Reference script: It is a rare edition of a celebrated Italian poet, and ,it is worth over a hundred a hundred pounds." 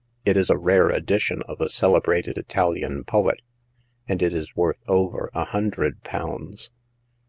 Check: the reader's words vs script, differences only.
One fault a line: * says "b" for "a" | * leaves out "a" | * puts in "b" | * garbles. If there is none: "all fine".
* leaves out "a hundred"